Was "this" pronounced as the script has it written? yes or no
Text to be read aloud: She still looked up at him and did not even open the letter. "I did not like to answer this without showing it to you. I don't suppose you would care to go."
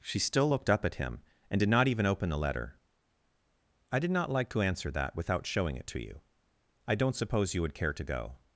no